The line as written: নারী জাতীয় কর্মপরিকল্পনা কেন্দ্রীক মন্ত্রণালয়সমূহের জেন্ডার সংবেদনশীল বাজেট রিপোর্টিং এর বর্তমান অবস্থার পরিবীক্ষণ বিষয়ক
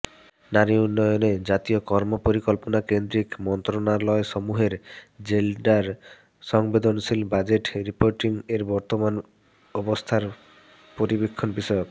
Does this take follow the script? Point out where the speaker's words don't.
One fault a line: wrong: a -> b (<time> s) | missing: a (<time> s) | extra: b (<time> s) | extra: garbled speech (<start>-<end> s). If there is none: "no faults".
extra: উন্নয়নে (0.8 s)